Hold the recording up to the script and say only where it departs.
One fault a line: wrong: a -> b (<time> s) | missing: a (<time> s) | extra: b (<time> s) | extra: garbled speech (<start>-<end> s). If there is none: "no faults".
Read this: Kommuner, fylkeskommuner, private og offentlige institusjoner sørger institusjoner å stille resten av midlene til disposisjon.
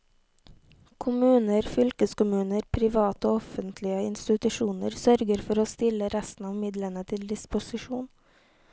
wrong: institusjoner -> for (5.5 s)